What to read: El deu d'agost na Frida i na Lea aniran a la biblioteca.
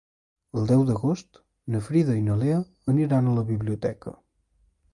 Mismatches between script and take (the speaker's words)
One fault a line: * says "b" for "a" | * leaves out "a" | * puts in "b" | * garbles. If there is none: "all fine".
all fine